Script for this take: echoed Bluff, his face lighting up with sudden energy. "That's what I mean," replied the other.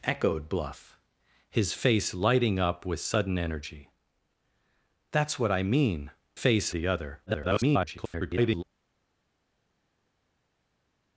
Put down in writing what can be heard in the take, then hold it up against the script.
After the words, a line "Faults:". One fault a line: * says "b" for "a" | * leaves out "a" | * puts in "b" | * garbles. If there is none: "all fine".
echoed Bluff, his face lighting up with sudden energy. "That's what I mean," face the other. [garbled]
Faults:
* says "face" for "replied"
* garbles